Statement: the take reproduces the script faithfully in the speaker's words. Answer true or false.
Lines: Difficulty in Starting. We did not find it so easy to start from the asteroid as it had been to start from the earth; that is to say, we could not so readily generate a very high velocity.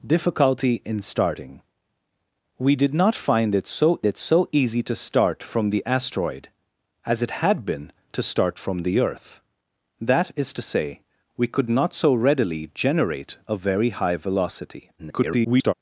false